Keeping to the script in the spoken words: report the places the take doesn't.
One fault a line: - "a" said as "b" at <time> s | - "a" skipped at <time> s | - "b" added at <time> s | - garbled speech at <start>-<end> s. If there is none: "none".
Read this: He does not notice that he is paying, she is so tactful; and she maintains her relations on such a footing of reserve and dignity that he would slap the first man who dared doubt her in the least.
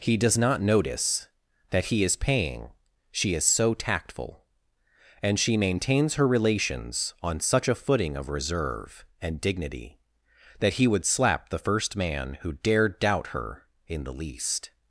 none